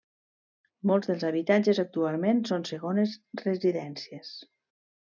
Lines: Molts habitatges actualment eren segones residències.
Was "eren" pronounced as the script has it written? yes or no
no